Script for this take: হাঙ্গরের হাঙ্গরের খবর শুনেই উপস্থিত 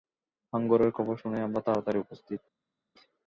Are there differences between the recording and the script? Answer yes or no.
yes